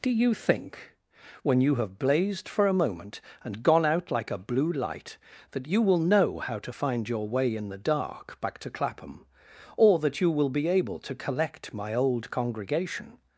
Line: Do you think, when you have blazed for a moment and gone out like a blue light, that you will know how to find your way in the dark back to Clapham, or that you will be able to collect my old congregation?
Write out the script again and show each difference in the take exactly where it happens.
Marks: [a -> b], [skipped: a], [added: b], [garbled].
Do you think, when you have blazed for a moment and gone out like a blue light, that you will know how to find your way in the dark back to Clapham, or that you will be able to collect my old congregation?